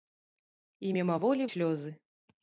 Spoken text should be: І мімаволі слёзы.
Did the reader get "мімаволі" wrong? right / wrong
right